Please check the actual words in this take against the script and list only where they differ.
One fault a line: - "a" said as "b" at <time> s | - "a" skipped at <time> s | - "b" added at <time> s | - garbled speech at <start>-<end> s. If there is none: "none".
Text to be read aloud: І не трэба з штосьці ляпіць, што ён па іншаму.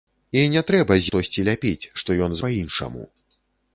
none